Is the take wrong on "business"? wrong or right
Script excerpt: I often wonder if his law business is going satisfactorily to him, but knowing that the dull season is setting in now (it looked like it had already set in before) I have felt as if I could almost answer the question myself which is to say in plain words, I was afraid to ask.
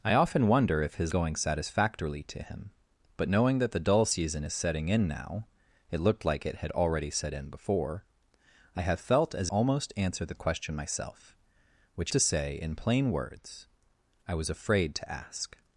wrong